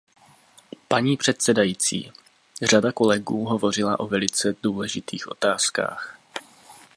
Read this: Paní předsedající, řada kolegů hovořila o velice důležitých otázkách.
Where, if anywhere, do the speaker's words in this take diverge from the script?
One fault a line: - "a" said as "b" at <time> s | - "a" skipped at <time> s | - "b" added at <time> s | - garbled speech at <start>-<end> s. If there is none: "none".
none